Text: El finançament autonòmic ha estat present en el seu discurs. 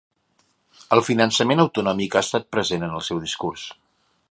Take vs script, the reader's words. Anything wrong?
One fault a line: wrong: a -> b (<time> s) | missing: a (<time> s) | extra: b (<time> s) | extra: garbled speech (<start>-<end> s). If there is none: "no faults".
no faults